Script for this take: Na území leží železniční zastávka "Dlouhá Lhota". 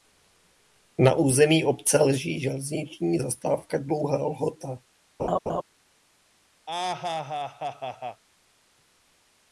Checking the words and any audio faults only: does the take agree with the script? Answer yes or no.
no